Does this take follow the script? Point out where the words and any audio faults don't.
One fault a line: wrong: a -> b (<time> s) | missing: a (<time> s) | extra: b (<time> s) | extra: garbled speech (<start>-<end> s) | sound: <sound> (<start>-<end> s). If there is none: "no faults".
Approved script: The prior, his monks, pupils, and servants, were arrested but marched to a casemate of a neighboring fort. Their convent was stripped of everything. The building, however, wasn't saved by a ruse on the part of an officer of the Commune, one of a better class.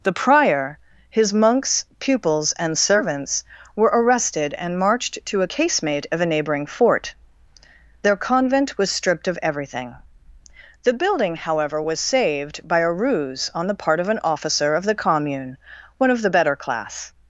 wrong: but -> and (4.5 s)
wrong: wasn't -> was (11.8 s)
wrong: a -> the (16.2 s)